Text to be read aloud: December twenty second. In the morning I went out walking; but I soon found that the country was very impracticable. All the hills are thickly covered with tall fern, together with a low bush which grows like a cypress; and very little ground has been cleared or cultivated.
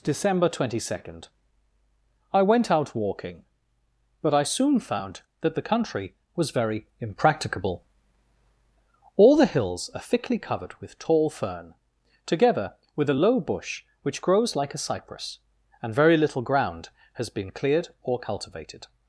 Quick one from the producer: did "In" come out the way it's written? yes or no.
no